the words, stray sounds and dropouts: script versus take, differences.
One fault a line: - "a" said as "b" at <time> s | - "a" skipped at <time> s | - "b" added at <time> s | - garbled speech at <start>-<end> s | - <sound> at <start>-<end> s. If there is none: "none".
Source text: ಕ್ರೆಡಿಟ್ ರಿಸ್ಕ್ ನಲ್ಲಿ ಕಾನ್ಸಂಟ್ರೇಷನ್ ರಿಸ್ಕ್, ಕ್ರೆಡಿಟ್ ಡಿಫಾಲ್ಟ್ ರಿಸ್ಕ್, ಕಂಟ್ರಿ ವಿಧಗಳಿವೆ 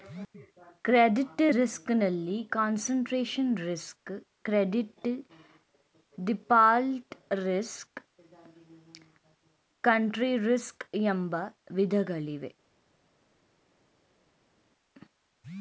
- "ರಿಸ್ಕ್ ಎಂಬ" added at 10.4 s